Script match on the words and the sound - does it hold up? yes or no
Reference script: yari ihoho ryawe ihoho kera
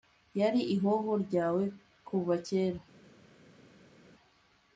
no